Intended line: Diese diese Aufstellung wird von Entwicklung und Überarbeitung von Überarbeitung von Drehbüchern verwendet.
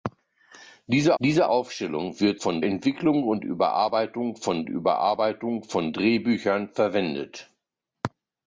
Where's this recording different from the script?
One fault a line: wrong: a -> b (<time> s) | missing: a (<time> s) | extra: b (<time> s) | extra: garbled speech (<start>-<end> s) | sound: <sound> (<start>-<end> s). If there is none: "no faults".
no faults